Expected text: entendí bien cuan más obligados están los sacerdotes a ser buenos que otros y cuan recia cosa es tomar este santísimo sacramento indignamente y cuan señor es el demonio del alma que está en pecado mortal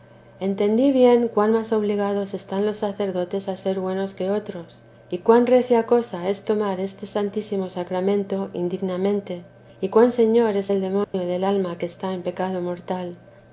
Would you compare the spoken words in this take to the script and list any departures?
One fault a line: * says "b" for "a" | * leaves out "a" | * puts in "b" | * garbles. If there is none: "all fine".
all fine